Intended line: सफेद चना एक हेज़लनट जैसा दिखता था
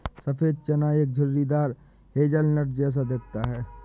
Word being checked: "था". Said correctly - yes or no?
no